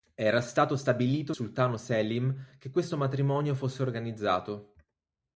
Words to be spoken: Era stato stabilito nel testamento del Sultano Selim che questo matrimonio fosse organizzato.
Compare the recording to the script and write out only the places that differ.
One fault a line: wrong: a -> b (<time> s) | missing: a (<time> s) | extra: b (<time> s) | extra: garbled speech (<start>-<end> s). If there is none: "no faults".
missing: nel testamento del (1.3 s)